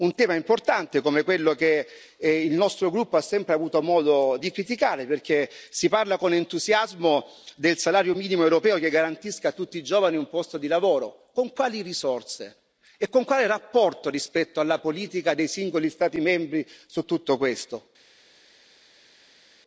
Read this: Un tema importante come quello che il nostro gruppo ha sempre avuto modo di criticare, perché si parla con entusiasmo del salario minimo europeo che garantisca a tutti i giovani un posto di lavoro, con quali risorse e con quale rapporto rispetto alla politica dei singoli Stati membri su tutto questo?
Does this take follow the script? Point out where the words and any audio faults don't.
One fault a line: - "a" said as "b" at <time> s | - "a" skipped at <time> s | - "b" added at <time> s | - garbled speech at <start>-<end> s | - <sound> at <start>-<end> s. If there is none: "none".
none